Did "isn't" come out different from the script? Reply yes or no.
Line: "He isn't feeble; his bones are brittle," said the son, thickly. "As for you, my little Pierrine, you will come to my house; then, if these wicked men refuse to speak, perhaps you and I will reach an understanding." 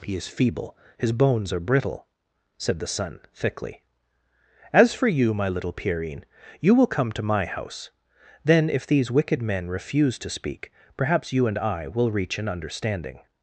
yes